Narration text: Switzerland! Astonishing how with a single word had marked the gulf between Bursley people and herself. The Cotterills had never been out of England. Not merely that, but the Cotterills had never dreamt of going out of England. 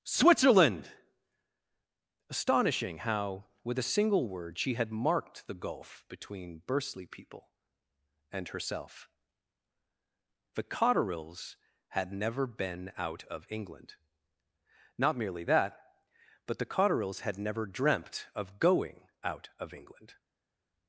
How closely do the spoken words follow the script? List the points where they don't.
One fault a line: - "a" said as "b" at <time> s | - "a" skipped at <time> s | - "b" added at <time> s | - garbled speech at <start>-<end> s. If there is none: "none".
- "she" added at 4.6 s